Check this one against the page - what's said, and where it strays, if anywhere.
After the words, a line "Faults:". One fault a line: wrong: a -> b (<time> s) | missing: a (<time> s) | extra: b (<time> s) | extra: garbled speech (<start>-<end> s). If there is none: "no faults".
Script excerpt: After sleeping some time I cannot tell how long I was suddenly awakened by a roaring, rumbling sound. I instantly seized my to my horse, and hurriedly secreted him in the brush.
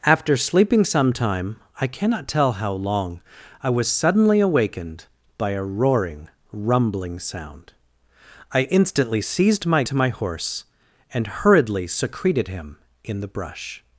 After sleeping some time I cannot tell how long I was suddenly awakened by a roaring, rumbling sound. I instantly seized my to my horse, and hurriedly secreted him in the brush.
Faults:
no faults